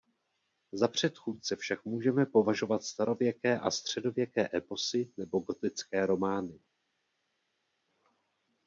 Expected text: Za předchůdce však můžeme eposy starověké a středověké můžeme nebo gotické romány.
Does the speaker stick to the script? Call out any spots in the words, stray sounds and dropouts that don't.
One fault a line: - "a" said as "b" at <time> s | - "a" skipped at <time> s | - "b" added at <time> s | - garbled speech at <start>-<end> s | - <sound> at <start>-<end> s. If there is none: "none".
- "eposy" said as "považovat" at 2.2 s
- "můžeme" said as "eposy" at 4.5 s